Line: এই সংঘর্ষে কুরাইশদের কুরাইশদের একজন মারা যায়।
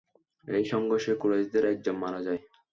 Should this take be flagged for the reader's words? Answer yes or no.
yes